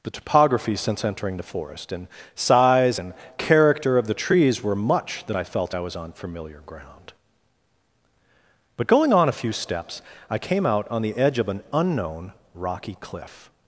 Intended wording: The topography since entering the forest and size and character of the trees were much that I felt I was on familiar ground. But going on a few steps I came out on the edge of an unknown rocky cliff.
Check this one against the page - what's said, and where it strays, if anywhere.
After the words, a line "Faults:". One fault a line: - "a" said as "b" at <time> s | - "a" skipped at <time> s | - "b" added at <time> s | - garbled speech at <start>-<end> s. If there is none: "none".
The topography since entering the forest and size and character of the trees were much that I felt I was on familiar ground. But going on a few steps I came out on the edge of an unknown rocky cliff.
Faults:
none